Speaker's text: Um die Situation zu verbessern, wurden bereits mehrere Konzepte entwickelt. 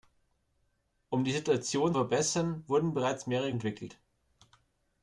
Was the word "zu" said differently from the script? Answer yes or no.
yes